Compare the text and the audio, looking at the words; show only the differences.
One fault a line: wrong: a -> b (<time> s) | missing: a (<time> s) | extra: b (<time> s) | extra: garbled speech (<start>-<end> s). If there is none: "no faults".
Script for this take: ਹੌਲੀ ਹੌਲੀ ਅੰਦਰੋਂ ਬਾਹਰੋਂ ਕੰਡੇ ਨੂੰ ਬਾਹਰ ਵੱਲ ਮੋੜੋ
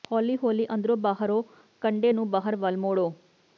no faults